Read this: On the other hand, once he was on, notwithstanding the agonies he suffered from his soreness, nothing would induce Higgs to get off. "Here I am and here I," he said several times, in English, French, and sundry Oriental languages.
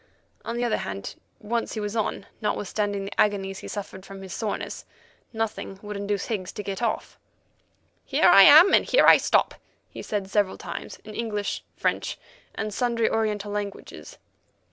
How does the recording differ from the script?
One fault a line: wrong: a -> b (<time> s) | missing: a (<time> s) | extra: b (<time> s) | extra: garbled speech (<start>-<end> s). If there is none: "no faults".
extra: stop (9.2 s)